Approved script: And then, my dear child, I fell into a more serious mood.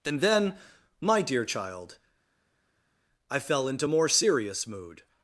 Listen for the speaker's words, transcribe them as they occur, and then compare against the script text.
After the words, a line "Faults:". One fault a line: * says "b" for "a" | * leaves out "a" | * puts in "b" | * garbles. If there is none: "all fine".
And then, my dear child, I fell into more serious mood.
Faults:
* leaves out "a"